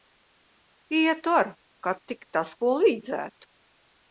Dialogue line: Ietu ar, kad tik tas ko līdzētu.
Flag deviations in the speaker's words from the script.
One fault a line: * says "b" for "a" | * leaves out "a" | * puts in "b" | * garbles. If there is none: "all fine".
all fine